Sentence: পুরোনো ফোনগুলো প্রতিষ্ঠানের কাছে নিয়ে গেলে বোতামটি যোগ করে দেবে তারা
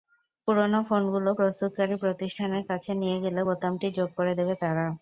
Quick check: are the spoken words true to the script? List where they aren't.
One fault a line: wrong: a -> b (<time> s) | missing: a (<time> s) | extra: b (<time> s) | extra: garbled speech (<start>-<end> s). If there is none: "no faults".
extra: প্রস্তুতকারী (1.4 s)